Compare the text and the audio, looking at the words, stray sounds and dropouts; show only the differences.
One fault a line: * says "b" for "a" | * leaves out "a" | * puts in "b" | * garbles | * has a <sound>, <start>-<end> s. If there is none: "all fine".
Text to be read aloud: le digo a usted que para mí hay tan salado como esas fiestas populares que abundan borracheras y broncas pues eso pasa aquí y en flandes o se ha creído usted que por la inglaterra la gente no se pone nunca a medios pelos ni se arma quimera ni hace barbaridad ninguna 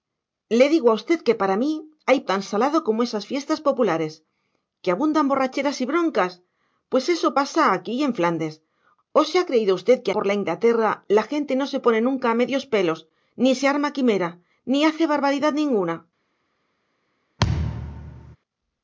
* has a thud, 17.4-18.4 s